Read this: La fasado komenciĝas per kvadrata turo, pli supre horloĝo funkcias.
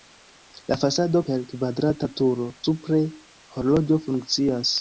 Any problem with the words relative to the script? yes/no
yes